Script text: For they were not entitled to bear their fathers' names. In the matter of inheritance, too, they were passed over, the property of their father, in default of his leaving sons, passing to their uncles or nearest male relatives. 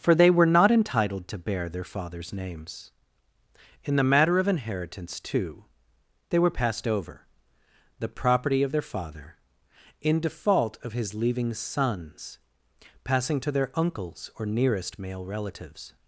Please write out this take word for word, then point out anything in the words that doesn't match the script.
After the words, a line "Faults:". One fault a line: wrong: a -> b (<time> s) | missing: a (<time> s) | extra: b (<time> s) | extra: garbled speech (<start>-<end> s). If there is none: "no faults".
For they were not entitled to bear their fathers' names. In the matter of inheritance, too, they were passed over, the property of their father, in default of his leaving sons, passing to their uncles or nearest male relatives.
Faults:
no faults